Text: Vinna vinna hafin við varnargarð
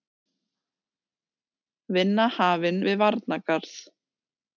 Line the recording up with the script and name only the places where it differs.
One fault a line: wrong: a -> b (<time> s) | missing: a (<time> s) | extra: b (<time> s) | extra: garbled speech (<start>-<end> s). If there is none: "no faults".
missing: vinna (2.2 s)